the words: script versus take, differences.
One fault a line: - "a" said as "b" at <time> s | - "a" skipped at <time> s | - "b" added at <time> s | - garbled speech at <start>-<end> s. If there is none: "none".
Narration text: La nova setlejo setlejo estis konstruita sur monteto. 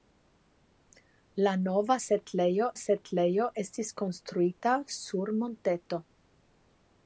none